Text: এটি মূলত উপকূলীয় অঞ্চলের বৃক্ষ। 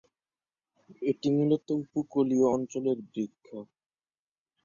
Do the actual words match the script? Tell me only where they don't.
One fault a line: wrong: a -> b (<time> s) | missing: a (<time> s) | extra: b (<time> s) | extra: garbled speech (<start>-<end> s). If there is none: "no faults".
no faults